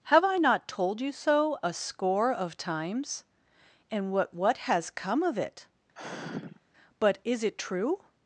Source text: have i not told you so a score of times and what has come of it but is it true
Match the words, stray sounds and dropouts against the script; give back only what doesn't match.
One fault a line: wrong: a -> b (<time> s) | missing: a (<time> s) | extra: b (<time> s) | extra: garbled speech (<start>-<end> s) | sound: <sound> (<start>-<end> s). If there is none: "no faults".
extra: what (4.3 s)
sound: sigh (5.9-6.6 s)